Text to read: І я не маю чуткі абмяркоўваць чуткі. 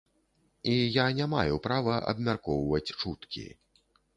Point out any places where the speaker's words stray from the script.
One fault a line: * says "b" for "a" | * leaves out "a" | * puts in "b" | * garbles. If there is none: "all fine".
* says "права" for "чуткі"